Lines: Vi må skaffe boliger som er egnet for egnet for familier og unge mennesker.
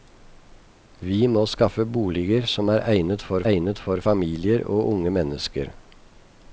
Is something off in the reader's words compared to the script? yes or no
no